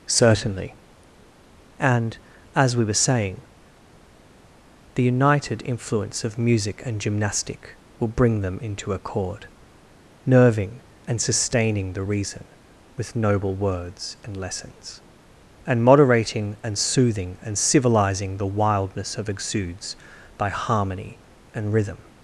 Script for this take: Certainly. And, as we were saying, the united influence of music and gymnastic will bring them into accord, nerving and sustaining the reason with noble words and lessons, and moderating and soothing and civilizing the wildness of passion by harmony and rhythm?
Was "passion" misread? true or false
true